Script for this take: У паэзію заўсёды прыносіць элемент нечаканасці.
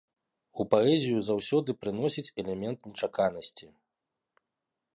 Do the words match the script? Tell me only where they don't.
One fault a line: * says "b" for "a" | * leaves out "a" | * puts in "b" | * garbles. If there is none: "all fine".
all fine